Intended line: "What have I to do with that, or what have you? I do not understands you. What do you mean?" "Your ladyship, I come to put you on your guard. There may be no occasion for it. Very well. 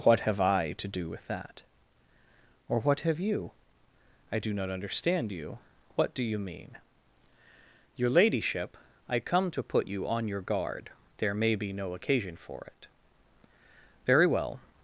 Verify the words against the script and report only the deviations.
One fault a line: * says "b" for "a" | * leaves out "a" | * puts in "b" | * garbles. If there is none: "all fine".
* says "understand" for "understands"